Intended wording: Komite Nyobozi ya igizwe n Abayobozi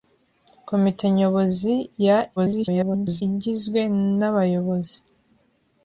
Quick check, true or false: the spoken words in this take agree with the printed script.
false